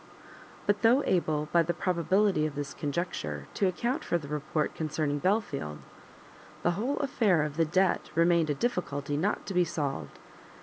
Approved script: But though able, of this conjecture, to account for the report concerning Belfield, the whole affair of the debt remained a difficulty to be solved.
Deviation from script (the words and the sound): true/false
true